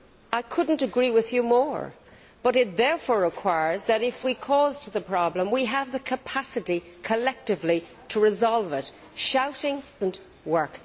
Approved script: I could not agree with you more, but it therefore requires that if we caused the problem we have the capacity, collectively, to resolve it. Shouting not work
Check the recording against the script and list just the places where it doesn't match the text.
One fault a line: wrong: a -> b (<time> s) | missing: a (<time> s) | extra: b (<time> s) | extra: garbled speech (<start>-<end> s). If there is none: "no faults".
no faults